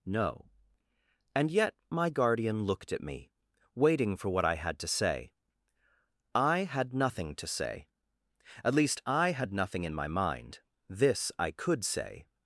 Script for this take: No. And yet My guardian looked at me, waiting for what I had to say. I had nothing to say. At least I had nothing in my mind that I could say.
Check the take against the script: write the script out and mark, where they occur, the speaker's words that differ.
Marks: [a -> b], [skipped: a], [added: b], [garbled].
No. And yet My guardian looked at me, waiting for what I had to say. I had nothing to say. At least I had nothing in my mind [that -> this] I could say.